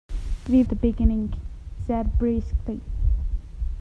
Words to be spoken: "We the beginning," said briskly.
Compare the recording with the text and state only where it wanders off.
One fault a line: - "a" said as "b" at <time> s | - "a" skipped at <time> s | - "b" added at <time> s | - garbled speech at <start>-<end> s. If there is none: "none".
none